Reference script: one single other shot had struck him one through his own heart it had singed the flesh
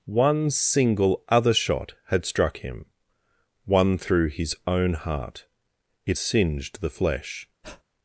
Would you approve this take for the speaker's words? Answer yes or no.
no